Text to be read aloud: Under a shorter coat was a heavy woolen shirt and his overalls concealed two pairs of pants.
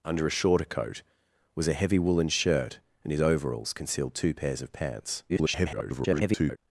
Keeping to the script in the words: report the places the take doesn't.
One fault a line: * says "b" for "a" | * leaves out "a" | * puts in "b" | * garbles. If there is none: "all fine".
* garbles